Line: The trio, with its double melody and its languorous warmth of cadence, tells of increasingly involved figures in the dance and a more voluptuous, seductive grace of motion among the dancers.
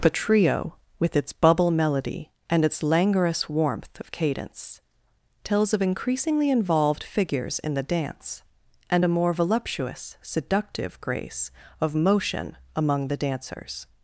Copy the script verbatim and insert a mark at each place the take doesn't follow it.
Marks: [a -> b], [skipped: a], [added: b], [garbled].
The trio, with its [double -> bubble] melody and its languorous warmth of cadence, tells of increasingly involved figures in the dance and a more voluptuous, seductive grace of motion among the dancers.